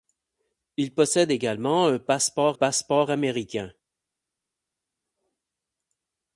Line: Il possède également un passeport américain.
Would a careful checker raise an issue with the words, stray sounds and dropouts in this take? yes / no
yes